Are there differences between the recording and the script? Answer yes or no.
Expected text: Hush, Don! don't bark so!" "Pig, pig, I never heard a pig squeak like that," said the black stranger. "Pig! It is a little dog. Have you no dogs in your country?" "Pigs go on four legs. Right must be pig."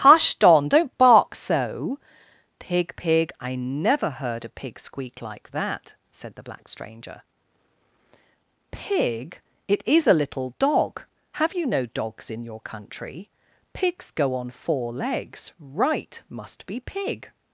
no